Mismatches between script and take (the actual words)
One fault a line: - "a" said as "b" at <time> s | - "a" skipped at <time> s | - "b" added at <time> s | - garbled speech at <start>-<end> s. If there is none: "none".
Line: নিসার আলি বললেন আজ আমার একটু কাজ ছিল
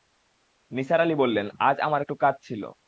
none